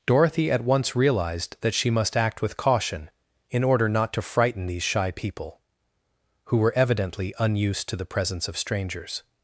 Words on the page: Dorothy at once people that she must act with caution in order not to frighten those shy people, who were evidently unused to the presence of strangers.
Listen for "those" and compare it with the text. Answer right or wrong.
wrong